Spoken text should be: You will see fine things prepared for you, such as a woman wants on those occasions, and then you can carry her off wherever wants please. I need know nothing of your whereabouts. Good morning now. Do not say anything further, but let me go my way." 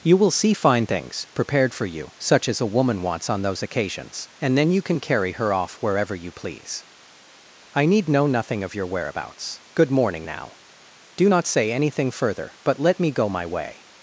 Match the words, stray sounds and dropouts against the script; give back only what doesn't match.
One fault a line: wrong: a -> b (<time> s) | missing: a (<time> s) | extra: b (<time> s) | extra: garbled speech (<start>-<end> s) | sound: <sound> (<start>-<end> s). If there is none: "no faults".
wrong: wants -> you (6.2 s)